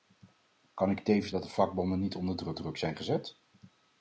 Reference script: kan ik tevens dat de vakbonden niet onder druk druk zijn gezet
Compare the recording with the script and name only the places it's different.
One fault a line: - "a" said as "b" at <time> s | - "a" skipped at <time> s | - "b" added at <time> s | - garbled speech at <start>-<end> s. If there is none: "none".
none